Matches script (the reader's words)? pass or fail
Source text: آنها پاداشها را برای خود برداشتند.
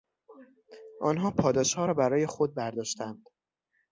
pass